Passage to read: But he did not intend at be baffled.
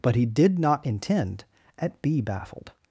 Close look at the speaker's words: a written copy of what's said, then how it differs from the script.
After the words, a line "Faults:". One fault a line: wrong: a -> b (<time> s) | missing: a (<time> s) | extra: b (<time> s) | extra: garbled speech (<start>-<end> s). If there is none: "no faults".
But he did not intend at be baffled.
Faults:
no faults